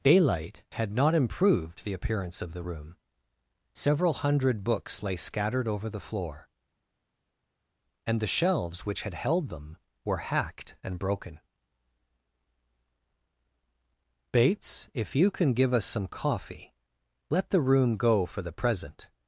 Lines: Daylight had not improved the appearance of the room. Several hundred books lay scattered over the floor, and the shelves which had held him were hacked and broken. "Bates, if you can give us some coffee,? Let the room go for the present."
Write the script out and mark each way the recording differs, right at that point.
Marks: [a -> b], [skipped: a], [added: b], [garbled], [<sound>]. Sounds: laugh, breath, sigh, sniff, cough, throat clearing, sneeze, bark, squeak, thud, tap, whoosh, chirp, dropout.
Daylight had not improved the appearance of the room. Several hundred books lay scattered over the floor, and the shelves which had held [him -> them] were hacked and broken. "Bates, if you can give us some coffee,? Let the room go for the present."